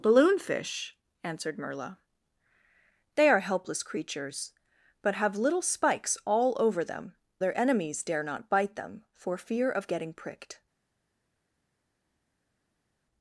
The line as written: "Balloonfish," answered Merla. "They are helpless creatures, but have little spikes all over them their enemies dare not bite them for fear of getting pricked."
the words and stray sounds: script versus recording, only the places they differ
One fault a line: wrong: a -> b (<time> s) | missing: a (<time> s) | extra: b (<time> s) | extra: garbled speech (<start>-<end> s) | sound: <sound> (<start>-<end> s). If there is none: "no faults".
no faults